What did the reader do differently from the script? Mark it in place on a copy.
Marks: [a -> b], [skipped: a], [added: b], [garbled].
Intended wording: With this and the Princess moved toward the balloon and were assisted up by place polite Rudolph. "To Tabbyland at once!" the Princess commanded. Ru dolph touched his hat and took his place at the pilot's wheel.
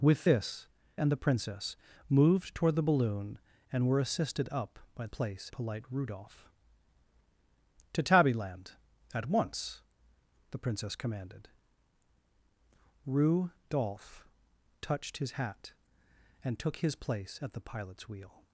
With this and the Princess moved toward the balloon and were assisted up by place polite Rudolph. "To Tabbyland at once!" the Princess commanded. Ru dolph touched his hat and took his place at the pilot's wheel.